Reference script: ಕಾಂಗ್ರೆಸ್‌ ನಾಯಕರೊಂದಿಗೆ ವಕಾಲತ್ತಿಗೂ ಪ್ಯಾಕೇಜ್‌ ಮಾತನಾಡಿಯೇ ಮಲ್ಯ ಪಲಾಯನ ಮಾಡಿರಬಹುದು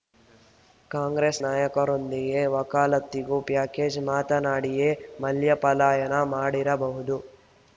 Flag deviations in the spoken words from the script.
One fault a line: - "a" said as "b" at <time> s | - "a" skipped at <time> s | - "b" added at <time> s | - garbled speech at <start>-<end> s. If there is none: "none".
none